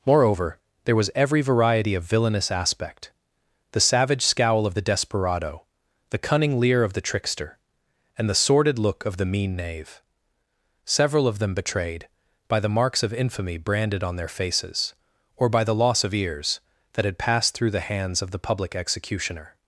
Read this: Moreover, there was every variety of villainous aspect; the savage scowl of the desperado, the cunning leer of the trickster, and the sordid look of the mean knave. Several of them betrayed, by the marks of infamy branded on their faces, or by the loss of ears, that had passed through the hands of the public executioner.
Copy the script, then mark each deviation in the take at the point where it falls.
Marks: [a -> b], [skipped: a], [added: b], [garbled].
Moreover, there was every variety of villainous aspect; the savage scowl of the desperado, the cunning leer of the trickster, and the sordid look of the mean knave. Several of them betrayed, by the marks of infamy branded on their faces, or by the loss of ears, that had passed through the hands of the public executioner.